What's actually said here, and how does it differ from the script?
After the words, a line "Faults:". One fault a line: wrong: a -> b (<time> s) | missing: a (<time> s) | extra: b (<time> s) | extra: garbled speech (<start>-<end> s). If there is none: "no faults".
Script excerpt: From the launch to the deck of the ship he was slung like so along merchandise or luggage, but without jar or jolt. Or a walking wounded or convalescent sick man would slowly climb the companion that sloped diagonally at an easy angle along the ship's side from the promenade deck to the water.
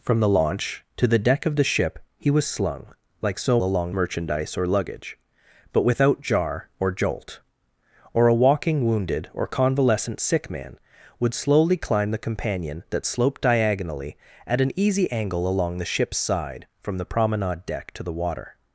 From the launch to the deck of the ship he was slung like so along merchandise or luggage, but without jar or jolt. Or a walking wounded or convalescent sick man would slowly climb the companion that sloped diagonally at an easy angle along the ship's side from the promenade deck to the water.
Faults:
no faults